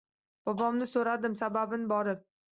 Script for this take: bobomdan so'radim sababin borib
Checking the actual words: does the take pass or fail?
pass